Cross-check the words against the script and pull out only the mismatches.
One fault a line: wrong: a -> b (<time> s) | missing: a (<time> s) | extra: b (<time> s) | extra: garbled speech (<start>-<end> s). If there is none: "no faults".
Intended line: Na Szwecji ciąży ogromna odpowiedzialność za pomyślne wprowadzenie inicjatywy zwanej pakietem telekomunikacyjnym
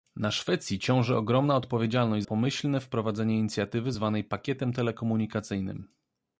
missing: za (2.2 s)